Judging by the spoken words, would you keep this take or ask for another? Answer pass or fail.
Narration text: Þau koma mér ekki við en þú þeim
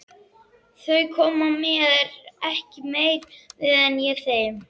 fail